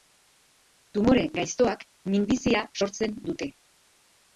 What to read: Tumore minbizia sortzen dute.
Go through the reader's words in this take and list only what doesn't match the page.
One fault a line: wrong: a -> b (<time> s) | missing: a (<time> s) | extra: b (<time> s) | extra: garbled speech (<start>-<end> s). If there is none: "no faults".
extra: gaiztoak (1.4 s)